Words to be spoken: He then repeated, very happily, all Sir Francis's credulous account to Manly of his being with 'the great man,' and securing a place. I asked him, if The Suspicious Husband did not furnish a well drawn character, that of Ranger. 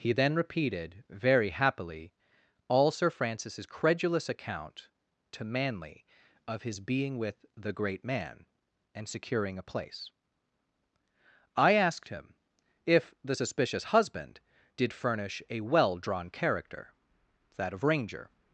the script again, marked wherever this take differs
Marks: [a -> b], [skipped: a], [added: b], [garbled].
He then repeated, very happily, all Sir Francis's credulous account to Manly of his being with 'the great man,' and securing a place. I asked him, if The Suspicious Husband did [skipped: not] furnish a well drawn character, that of Ranger.